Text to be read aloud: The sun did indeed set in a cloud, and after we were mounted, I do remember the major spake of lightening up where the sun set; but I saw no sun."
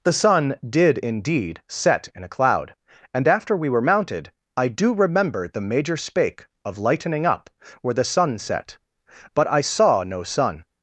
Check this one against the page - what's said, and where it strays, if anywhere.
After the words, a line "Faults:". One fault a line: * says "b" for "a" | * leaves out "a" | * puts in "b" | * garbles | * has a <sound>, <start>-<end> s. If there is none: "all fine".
The sun did indeed set in a cloud, and after we were mounted, I do remember the major spake of lightening up where the sun set; but I saw no sun."
Faults:
all fine